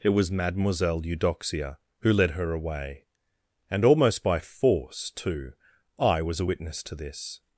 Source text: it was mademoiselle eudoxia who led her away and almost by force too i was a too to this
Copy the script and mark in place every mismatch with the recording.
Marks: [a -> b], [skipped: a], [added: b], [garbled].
it was mademoiselle eudoxia who led her away and almost by force too i was a [too -> witness] to this